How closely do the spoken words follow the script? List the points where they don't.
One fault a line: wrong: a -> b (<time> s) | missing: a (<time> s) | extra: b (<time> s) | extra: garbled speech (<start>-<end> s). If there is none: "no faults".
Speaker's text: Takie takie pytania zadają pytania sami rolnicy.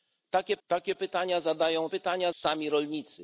no faults